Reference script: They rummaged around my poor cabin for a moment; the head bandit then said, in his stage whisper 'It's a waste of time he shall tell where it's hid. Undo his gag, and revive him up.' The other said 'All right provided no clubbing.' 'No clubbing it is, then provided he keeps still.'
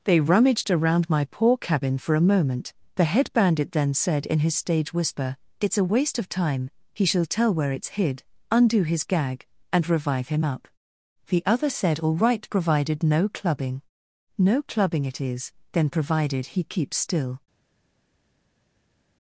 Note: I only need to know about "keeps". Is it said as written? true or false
true